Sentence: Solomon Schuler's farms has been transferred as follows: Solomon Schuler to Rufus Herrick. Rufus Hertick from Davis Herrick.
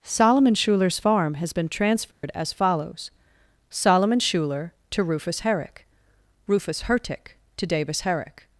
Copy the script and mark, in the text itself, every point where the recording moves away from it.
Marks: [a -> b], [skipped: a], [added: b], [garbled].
Solomon Schuler's [farms -> farm] has been transferred as follows: Solomon Schuler to Rufus Herrick. Rufus Hertick [from -> to] Davis Herrick.